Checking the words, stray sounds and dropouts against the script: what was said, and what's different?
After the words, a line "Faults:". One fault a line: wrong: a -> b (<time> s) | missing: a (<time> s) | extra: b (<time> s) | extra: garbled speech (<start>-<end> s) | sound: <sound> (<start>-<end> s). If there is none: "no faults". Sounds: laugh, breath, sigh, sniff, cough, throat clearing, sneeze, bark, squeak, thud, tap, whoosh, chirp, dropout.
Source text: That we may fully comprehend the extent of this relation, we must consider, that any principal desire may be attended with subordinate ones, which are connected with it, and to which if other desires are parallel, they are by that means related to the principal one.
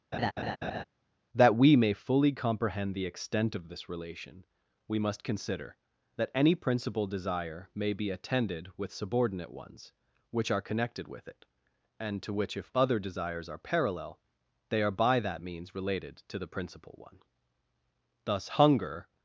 That we may fully comprehend the extent of this relation, we must consider, that any principal desire may be attended with subordinate ones, which are connected with it, and to which if other desires are parallel, they are by that means related to the principal one. Thus hunger
Faults:
sound: laugh (0.1-0.8 s)
extra: Thus hunger (18.2 s)